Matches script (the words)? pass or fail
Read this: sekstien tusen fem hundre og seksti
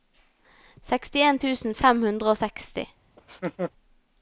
pass